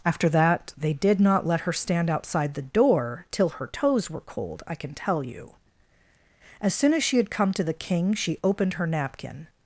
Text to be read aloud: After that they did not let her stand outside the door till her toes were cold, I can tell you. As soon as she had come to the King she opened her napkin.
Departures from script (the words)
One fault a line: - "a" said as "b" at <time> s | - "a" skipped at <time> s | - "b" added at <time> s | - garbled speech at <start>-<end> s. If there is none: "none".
none